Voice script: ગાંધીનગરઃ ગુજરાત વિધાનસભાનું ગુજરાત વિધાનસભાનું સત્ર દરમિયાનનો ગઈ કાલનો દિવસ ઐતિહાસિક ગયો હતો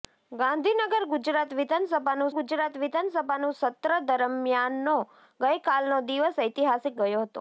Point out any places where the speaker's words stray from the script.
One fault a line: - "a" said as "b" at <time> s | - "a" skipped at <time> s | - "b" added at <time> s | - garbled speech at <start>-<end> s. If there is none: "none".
none